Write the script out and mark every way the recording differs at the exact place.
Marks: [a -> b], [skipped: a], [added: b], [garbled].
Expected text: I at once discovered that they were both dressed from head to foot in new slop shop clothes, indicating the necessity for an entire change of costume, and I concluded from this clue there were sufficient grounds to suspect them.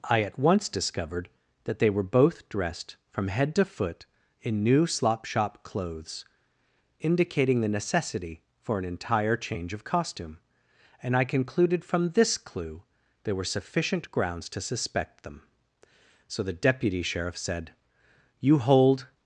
I at once discovered that they were both dressed from head to foot in new slop shop clothes, indicating the necessity for an entire change of costume, and I concluded from this clue there were sufficient grounds to suspect them. [added: So the deputy sheriff said You hold]